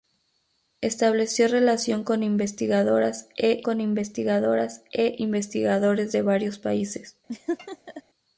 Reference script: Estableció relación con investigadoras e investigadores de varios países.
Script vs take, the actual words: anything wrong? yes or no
yes